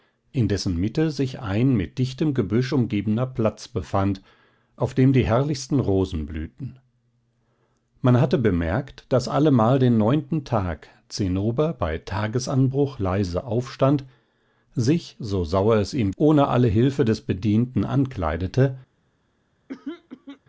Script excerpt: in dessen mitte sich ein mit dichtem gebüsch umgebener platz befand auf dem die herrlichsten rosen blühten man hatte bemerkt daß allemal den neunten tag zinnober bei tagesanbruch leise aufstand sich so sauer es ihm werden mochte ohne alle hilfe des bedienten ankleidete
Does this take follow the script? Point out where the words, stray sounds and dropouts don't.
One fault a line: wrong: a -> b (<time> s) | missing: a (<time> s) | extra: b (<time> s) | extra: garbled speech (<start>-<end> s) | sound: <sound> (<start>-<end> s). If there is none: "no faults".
missing: werden mochte (16.1 s)
sound: throat clearing (19.7-20.4 s)